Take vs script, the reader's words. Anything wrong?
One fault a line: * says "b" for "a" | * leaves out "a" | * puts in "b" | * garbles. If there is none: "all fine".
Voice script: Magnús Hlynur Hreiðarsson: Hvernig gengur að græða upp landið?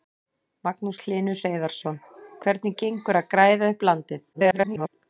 * garbles